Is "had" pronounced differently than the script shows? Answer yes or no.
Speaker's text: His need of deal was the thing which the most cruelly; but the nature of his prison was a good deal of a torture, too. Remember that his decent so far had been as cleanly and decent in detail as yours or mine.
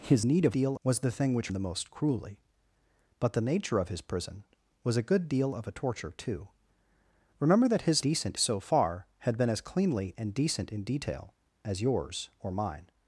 no